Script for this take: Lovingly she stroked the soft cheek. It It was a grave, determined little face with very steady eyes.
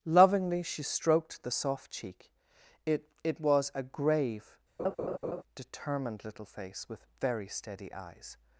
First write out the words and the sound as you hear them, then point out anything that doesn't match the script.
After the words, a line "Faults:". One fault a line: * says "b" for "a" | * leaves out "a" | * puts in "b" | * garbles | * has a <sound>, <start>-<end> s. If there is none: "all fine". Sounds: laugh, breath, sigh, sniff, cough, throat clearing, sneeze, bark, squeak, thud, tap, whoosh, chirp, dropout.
Lovingly she stroked the soft cheek. It It was a grave, determined little face with very steady eyes.
Faults:
* has a laugh, 4.8-5.4 s